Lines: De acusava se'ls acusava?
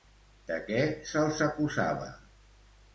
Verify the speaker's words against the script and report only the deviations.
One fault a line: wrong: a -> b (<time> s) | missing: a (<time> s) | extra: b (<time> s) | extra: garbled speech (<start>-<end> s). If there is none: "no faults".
wrong: acusava -> què (0.7 s)